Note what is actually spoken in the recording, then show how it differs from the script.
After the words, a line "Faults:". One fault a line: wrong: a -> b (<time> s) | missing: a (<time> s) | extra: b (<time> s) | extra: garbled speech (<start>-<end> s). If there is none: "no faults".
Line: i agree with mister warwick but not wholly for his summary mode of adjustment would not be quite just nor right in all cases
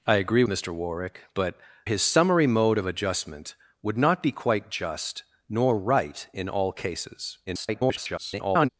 i agree mister warwick but his summary mode of adjustment would not be quite just nor right in all cases [garbled]
Faults:
missing: with (0.4 s)
missing: not wholly for (1.6 s)
extra: garbled speech (7.5-8.7 s)